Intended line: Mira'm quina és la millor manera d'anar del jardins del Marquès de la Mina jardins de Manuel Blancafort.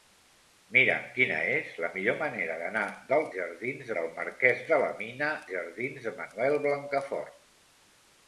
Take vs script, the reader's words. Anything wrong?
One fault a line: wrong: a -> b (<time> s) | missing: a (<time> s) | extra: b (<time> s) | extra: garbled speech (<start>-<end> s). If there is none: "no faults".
no faults